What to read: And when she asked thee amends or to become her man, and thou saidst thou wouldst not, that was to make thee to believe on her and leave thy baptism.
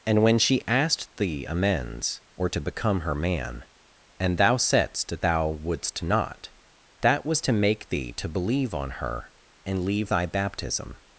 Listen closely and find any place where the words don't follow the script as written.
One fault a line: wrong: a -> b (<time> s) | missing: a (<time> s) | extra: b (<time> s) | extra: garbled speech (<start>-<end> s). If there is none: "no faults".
no faults